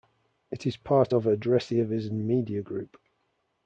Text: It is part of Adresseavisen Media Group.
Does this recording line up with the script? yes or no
yes